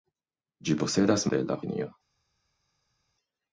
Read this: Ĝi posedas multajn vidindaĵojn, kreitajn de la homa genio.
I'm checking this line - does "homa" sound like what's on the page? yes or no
no